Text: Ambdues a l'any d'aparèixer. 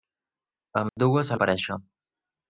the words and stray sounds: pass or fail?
fail